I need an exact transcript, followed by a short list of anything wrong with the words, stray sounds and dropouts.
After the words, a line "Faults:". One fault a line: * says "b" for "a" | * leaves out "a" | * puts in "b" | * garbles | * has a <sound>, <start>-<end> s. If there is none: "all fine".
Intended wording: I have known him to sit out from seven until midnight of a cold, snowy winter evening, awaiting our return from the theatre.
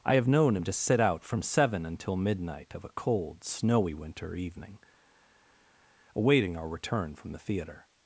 I have known him to sit out from seven until midnight of a cold, snowy winter evening, awaiting our return from the theatre.
Faults:
all fine